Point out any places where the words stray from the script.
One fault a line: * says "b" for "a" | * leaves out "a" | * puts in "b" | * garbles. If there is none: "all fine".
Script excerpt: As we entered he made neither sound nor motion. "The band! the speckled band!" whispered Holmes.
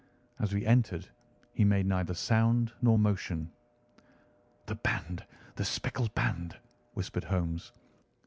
all fine